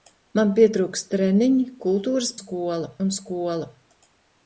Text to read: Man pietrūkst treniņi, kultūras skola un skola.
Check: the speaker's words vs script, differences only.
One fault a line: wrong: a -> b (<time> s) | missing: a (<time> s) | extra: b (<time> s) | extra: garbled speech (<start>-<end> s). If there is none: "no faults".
no faults